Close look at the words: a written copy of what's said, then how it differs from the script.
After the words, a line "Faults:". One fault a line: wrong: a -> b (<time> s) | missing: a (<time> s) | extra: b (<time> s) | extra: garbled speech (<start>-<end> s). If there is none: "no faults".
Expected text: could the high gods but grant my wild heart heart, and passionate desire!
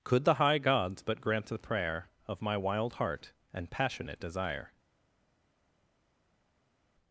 could the high gods but grant the prayer Of my wild heart, and passionate desire!
Faults:
extra: the prayer Of (1.4 s)
missing: heart (3.3 s)